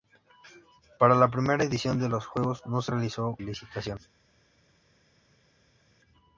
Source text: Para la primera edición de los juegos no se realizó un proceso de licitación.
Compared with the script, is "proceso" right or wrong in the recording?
wrong